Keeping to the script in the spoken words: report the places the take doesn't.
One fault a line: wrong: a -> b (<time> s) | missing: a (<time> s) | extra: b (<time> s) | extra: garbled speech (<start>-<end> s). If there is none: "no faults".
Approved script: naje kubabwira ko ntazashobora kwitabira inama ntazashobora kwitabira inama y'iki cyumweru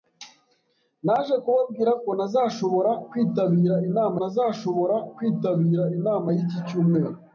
no faults